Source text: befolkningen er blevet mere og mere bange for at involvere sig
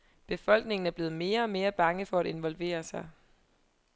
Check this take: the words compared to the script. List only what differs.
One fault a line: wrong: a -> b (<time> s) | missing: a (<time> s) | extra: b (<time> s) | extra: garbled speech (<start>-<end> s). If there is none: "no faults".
no faults